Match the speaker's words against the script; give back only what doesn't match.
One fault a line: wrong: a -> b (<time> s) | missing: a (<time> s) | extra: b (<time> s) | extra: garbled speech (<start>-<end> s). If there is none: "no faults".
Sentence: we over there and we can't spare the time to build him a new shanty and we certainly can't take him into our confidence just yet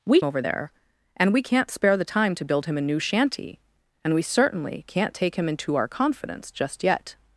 no faults